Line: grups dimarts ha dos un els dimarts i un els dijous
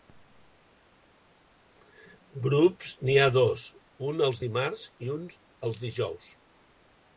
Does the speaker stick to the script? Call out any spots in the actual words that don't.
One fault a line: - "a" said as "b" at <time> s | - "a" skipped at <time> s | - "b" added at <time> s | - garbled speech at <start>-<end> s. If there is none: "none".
- "dimarts" said as "n'hi" at 3.0 s